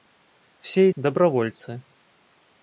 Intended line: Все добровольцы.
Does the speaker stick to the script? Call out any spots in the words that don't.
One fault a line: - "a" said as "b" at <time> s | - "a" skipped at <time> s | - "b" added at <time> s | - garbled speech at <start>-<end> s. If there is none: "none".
none